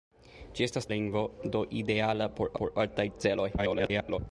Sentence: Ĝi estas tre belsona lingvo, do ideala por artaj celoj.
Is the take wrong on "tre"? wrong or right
wrong